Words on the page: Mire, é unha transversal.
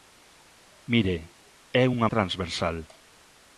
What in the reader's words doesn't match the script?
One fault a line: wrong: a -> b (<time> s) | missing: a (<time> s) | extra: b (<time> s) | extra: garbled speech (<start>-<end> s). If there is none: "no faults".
no faults